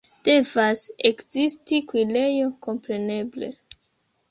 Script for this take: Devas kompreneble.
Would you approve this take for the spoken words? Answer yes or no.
no